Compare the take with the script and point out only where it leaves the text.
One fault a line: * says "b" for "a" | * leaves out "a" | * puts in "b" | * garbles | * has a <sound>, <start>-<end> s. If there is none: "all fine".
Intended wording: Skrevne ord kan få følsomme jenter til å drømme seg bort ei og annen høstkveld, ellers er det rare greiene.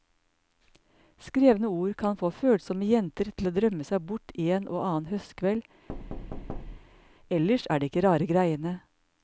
* says "en" for "ei"
* has a thud, 5.9-7.2 s
* puts in "ikke"